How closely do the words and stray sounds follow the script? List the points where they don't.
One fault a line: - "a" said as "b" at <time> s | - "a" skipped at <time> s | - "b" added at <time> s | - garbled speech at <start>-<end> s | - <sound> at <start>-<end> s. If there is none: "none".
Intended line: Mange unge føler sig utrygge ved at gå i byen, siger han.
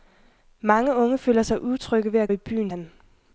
- "gå" skipped at 2.3 s
- "siger" skipped at 2.7 s